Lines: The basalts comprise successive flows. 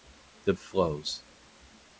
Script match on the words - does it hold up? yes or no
no